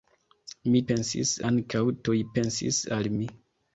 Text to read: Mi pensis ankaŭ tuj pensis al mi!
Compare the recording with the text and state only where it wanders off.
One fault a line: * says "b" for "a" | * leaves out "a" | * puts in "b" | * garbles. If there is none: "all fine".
all fine